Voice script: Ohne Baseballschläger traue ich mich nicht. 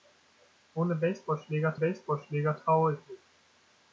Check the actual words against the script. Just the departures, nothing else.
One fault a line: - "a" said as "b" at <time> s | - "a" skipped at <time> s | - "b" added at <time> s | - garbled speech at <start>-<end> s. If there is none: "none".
- "Baseballschläger" added at 1.7 s
- "mich" skipped at 3.0 s